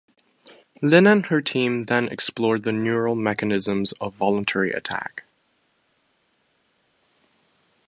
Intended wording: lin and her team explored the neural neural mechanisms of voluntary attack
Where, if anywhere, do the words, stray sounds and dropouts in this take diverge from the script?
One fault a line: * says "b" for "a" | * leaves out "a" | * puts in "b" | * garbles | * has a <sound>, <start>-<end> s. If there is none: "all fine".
* puts in "then"
* leaves out "neural"